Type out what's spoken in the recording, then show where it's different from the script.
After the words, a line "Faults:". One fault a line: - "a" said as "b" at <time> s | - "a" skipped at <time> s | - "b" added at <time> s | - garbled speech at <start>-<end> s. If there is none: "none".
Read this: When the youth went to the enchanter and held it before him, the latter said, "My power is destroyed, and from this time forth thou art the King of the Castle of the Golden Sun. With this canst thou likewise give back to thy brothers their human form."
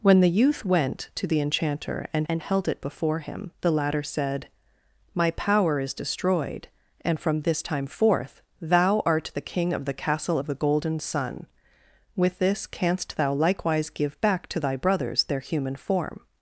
When the youth went to the enchanter and and held it before him, the latter said, "My power is destroyed, and from this time forth thou art the King of the Castle of the Golden Sun. With this canst thou likewise give back to thy brothers their human form."
Faults:
- "and" added at 2.3 s